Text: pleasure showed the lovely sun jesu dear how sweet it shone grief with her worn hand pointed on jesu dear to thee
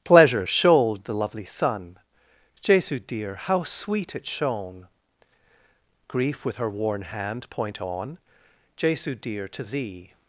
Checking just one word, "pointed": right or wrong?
wrong